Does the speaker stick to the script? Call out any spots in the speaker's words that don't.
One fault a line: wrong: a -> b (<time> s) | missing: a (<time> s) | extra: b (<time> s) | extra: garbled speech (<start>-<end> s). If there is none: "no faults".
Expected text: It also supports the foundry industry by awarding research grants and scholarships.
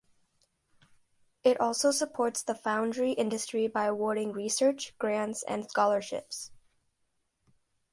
no faults